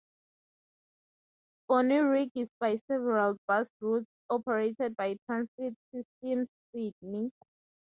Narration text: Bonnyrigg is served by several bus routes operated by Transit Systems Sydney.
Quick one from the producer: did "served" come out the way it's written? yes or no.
no